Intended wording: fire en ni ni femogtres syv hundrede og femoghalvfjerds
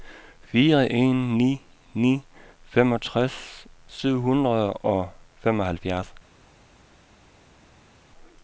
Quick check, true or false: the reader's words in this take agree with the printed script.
true